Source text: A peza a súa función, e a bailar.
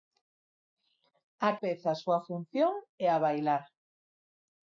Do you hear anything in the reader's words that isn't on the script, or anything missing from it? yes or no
no